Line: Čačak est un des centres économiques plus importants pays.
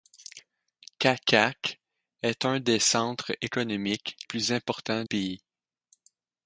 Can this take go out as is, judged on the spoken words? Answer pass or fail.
pass